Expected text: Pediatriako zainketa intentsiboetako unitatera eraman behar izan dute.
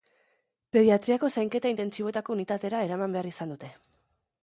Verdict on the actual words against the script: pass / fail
pass